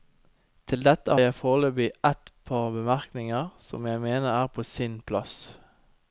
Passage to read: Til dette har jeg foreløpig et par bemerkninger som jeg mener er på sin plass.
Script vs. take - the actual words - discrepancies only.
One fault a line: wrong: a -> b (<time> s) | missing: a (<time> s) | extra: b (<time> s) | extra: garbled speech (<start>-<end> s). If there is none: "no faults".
missing: har (1.2 s)